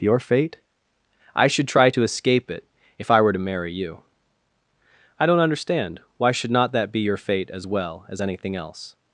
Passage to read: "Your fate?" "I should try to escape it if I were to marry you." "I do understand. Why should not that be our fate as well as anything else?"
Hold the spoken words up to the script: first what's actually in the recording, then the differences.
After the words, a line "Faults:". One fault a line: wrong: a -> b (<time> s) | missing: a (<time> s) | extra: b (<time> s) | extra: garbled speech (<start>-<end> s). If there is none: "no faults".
"Your fate?" "I should try to escape it if I were to marry you." "I don't understand. Why should not that be your fate as well as anything else?"
Faults:
wrong: do -> don't (5.3 s)
wrong: our -> your (7.0 s)